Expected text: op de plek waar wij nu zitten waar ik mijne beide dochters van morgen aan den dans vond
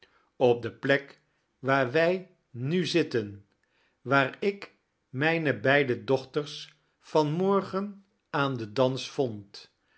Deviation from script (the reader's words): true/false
false